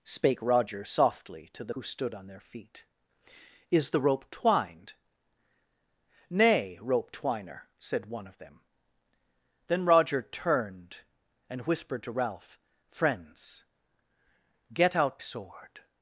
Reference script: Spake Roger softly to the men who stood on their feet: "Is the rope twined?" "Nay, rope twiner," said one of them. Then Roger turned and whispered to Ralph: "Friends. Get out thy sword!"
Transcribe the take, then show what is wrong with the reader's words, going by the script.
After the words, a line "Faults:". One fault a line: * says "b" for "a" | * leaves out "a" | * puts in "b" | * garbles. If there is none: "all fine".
Spake Roger softly to the who stood on their feet: "Is the rope twined?" "Nay, rope twiner," said one of them. Then Roger turned and whispered to Ralph: "Friends. Get out sword!"
Faults:
* leaves out "men"
* leaves out "thy"